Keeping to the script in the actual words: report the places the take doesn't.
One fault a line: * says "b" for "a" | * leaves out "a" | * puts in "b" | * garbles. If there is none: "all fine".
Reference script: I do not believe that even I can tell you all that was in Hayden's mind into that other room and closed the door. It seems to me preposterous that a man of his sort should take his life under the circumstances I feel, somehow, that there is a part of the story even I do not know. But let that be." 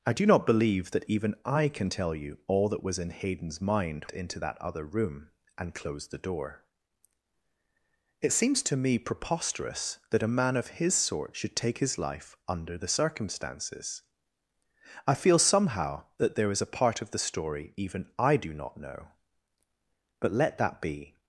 all fine